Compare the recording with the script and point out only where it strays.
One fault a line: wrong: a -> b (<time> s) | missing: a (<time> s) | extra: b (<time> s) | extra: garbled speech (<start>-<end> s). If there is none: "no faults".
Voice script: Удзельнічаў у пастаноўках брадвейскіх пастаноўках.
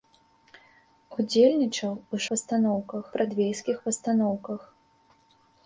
no faults